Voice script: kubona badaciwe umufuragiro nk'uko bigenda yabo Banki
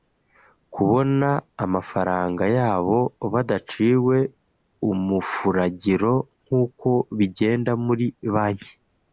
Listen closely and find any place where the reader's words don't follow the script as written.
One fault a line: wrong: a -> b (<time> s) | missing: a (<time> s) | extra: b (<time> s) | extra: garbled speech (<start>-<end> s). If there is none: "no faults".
extra: amafaranga yabo (1.6 s)
wrong: yabo -> muri (7.8 s)